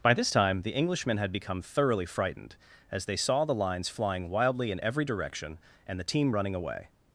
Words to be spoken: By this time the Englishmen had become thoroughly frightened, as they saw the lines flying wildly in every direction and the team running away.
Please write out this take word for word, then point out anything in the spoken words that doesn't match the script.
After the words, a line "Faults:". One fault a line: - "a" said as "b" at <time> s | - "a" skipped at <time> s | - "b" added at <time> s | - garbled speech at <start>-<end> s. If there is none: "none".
By this time the Englishmen had become thoroughly frightened, as they saw the lines flying wildly in every direction and the team running away.
Faults:
none